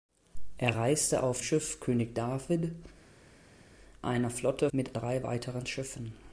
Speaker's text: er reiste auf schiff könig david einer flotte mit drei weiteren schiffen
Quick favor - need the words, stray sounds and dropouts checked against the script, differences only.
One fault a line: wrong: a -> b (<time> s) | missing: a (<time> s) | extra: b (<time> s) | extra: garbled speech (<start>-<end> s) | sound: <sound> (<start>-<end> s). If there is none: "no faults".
no faults